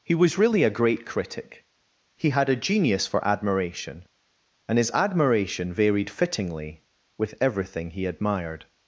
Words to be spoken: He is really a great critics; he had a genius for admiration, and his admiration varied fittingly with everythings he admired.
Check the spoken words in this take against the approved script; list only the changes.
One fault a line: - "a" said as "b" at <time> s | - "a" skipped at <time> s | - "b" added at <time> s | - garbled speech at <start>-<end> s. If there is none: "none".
- "is" said as "was" at 0.1 s
- "critics" said as "critic" at 1.1 s
- "everythings" said as "everything" at 7.4 s